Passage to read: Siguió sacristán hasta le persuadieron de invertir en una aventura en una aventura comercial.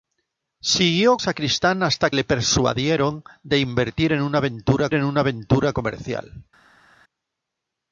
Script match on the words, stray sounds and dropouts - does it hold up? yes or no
yes